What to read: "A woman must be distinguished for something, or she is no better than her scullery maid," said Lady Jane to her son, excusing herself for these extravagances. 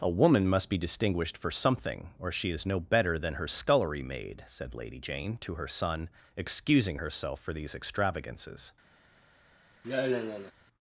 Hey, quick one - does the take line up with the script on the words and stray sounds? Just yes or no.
no